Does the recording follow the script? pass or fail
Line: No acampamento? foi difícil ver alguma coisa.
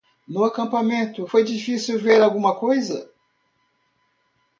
pass